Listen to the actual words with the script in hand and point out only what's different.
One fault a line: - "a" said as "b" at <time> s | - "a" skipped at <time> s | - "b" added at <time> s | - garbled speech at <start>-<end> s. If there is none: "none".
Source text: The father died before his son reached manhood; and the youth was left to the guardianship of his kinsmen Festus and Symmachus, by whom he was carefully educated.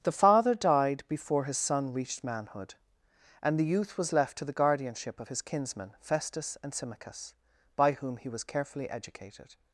none